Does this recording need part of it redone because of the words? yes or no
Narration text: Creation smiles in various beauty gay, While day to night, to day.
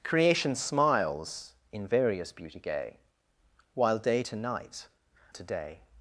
no